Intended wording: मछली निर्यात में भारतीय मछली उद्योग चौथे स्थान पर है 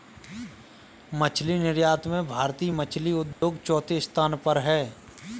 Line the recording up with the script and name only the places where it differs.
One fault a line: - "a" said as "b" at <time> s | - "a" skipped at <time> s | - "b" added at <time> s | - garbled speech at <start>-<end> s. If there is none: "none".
none